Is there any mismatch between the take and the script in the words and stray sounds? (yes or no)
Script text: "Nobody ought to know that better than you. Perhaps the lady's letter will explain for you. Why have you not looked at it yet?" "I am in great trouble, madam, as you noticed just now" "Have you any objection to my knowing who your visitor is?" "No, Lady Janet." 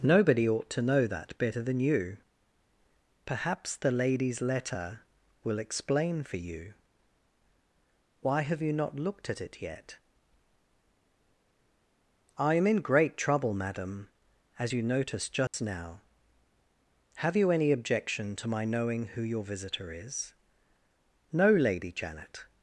yes